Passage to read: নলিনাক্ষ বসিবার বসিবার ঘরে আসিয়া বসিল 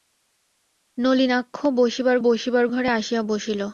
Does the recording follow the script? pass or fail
pass